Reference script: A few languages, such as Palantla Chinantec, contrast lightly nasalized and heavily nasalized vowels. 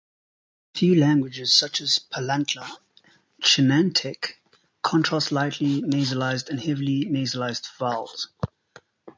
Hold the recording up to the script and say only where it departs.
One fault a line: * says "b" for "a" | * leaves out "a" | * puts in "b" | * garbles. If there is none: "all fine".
all fine